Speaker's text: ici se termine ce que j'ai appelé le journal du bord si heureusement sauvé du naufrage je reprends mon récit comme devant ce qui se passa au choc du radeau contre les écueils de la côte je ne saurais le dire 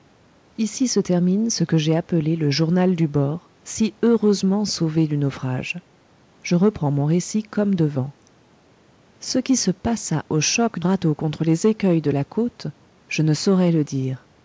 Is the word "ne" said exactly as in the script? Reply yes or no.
yes